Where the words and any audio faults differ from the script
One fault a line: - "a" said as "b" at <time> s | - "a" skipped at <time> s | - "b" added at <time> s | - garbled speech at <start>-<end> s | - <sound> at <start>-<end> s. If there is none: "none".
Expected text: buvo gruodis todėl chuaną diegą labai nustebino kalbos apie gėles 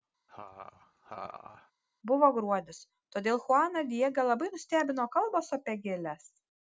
- laugh at 0.3-1.7 s